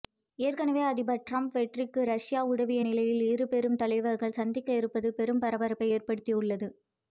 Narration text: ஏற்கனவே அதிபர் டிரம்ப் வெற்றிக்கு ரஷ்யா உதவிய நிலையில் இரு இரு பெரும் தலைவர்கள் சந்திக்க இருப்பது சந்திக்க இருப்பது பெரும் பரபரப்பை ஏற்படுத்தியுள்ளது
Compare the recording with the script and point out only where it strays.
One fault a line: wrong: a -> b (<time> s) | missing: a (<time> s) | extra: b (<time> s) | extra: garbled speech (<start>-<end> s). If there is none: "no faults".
missing: இரு (3.5 s)
missing: சந்திக்க இருப்பது (5.1 s)